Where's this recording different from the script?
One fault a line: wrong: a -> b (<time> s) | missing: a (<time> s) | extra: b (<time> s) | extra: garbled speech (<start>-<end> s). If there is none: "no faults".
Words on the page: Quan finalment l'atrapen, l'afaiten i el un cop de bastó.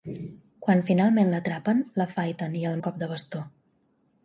no faults